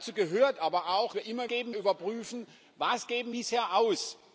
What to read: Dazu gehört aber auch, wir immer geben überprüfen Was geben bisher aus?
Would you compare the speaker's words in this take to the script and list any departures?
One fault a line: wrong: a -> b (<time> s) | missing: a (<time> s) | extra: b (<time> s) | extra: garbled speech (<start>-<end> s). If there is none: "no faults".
no faults